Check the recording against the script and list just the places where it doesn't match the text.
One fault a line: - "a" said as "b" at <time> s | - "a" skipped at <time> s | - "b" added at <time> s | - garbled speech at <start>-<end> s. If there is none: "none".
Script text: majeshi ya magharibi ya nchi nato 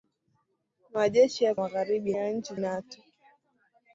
none